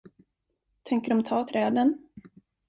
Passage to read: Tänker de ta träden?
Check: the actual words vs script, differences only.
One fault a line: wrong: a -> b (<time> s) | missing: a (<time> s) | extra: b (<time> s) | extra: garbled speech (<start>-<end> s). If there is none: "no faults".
no faults